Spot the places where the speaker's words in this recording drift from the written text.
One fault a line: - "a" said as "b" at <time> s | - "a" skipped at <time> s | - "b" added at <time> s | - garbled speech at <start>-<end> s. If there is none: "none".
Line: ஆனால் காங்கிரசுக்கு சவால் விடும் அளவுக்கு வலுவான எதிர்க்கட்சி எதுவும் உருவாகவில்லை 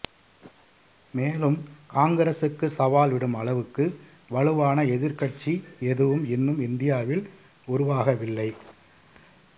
- "ஆனால்" said as "மேலும்" at 1.1 s
- "இன்னும் இந்தியாவில்" added at 6.3 s